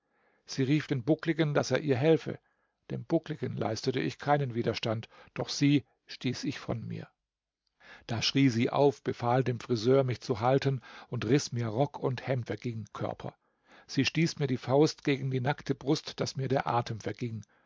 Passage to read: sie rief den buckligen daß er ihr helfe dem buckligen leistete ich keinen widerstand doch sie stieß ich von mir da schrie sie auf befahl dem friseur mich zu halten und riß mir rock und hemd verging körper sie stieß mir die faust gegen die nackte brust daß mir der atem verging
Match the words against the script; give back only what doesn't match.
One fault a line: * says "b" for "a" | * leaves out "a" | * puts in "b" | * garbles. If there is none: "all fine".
all fine